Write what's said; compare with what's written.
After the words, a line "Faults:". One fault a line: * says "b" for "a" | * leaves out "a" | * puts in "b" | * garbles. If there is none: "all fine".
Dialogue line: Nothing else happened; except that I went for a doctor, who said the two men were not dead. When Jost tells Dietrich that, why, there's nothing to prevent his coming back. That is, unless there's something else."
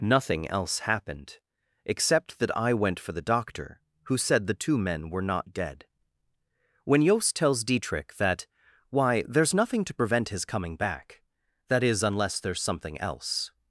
Nothing else happened; except that I went for the doctor, who said the two men were not dead. When Jost tells Dietrich that, why, there's nothing to prevent his coming back. That is, unless there's something else."
Faults:
* says "the" for "a"